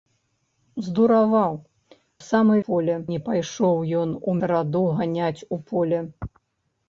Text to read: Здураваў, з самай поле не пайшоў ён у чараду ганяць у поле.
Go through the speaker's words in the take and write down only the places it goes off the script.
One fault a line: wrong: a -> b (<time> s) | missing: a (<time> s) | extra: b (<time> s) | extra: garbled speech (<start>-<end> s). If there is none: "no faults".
no faults